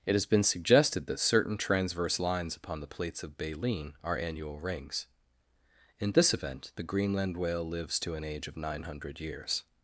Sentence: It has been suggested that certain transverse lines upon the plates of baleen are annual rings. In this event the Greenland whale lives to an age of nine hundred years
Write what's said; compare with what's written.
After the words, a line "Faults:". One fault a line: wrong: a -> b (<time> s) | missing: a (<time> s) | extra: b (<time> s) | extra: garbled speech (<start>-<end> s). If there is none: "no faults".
It has been suggested that certain transverse lines upon the plates of baleen are annual rings. In this event the Greenland whale lives to an age of nine hundred years
Faults:
no faults